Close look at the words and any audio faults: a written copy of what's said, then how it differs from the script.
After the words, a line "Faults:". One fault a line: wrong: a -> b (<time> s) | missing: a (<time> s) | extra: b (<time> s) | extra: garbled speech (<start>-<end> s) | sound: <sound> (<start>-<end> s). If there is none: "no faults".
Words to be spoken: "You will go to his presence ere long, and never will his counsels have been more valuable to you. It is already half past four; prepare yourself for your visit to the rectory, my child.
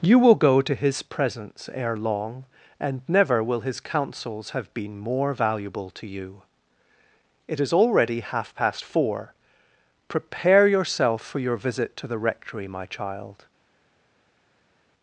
"You will go to his presence ere long, and never will his counsels have been more valuable to you. It is already half past four; prepare yourself for your visit to the rectory, my child.
Faults:
no faults